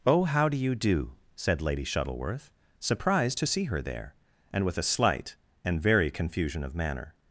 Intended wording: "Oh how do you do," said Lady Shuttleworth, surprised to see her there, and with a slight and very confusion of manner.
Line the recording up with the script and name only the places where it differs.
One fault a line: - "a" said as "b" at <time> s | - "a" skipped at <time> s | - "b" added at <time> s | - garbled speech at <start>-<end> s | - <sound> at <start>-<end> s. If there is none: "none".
none